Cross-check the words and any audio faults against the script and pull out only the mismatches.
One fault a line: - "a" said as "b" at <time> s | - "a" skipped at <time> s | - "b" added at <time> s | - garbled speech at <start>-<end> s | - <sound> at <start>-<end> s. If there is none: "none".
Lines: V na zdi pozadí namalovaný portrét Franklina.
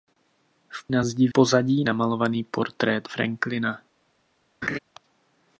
- laugh at 4.6-4.8 s